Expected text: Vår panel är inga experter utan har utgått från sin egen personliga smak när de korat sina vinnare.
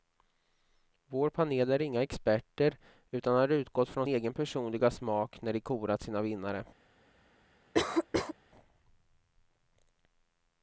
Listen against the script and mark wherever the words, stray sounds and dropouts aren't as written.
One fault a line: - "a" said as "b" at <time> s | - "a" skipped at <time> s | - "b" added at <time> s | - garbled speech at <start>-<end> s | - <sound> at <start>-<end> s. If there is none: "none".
- "sin" skipped at 4.1 s
- cough at 7.7-8.3 s